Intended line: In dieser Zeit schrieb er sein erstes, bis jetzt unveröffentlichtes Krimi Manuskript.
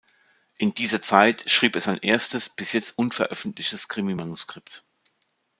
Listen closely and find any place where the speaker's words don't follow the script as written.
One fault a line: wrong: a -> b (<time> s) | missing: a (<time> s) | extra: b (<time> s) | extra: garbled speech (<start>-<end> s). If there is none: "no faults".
no faults